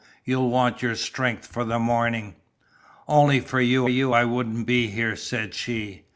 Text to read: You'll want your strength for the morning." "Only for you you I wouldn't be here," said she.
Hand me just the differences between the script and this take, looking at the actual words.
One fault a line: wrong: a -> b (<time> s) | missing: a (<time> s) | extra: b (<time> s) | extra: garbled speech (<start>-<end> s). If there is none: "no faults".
no faults